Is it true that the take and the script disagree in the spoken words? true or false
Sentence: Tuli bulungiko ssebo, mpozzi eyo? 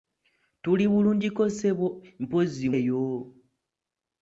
false